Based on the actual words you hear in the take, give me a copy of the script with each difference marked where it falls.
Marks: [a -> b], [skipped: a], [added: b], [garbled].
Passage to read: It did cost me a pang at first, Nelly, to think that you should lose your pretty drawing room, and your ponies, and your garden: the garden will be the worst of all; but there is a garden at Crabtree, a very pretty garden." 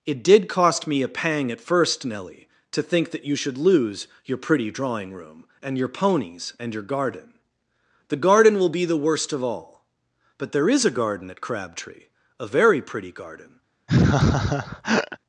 It did cost me a pang at first, Nelly, to think that you should lose your pretty drawing room, and your ponies, and your garden: the garden will be the worst of all; but there is a garden at Crabtree, a very pretty garden."